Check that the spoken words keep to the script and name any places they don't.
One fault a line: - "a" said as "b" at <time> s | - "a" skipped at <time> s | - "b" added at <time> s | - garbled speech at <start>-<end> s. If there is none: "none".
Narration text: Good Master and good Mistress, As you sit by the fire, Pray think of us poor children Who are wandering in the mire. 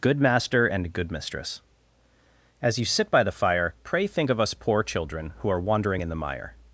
none